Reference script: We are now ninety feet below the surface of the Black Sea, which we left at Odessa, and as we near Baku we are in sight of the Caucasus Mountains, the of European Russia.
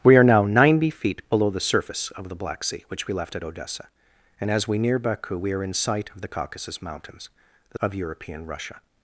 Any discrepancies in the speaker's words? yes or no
no